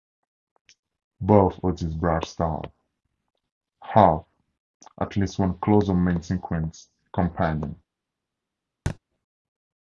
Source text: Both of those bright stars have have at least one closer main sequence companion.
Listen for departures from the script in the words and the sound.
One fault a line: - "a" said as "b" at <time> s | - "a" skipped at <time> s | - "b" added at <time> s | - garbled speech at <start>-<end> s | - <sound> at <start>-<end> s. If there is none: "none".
- "those" said as "these" at 1.8 s
- "have" skipped at 4.2 s
- thud at 8.9-9.0 s